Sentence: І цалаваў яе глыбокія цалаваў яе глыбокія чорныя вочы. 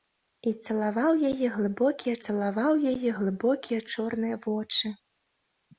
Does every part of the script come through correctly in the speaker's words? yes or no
yes